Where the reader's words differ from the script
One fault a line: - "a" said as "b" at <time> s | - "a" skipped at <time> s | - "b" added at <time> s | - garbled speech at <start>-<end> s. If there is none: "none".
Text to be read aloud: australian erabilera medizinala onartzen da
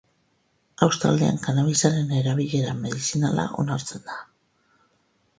- "kannabisaren" added at 1.4 s